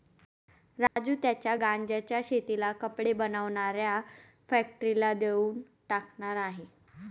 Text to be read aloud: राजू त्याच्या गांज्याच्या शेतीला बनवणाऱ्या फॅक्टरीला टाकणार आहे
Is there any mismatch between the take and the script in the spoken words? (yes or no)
yes